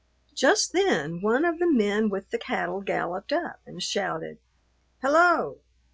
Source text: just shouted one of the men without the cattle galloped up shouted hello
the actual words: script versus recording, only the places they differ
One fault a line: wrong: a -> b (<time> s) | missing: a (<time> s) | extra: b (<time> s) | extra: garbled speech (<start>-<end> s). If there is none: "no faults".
wrong: shouted -> then (0.7 s)
wrong: without -> with (2.1 s)
extra: and (3.6 s)